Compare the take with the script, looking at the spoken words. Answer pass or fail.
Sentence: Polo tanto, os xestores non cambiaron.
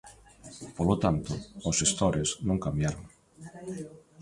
pass